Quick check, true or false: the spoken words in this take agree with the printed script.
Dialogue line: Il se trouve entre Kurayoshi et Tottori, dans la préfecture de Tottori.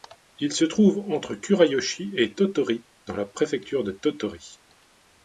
true